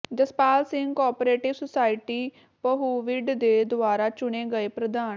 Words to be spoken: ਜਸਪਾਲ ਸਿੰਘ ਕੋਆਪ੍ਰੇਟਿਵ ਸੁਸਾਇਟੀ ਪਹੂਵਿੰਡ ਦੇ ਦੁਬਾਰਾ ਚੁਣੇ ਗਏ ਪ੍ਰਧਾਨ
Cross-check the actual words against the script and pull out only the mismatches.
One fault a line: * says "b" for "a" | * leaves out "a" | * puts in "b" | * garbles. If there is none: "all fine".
all fine